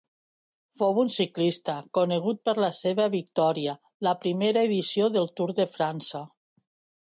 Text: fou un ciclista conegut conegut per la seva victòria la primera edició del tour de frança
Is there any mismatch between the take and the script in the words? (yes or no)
yes